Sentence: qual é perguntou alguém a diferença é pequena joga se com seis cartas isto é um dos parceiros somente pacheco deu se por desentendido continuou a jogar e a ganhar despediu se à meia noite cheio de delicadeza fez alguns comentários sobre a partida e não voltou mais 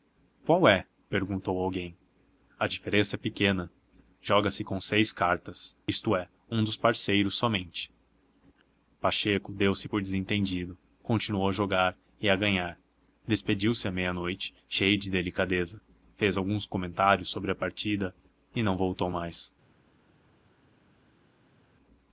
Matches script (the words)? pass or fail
pass